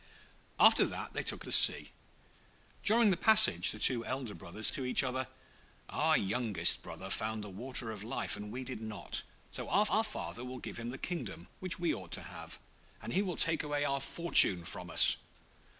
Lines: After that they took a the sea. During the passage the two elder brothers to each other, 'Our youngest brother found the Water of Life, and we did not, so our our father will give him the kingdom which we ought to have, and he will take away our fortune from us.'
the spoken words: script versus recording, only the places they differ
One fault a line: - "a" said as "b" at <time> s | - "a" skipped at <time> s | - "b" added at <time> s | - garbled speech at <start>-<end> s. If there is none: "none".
none